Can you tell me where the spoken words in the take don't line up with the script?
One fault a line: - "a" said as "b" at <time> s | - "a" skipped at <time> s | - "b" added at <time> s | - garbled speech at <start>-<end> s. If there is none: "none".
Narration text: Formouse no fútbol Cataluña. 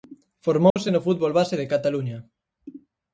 - "base de" added at 1.4 s